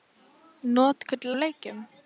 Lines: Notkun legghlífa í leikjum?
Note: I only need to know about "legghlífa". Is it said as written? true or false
false